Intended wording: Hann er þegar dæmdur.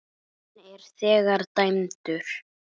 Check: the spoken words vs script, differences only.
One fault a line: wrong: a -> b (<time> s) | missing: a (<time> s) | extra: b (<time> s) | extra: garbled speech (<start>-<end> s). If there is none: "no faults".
no faults